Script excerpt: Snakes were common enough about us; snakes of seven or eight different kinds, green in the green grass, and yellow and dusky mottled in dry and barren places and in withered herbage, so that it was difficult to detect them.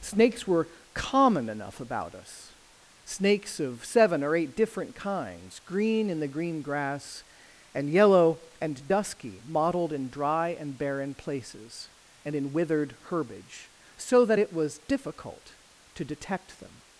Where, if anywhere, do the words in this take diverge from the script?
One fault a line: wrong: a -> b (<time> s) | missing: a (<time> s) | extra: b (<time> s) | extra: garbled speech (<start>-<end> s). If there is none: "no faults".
no faults